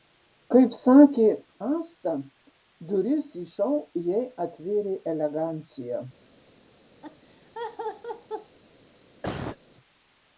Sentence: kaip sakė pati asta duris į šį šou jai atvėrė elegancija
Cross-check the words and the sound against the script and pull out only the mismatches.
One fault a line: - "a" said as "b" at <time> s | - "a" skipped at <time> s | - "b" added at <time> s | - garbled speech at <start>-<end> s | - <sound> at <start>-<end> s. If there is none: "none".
- "pati" skipped at 1.2 s
- "šį" skipped at 3.5 s
- laugh at 7.0-8.6 s
- cough at 9.2-9.6 s